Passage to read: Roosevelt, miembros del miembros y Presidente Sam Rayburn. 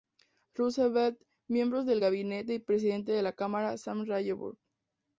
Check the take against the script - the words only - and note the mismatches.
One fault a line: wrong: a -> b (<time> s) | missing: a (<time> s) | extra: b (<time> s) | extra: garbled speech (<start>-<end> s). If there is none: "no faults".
wrong: miembros -> gabinete (2.0 s)
extra: de la Cámara (3.1 s)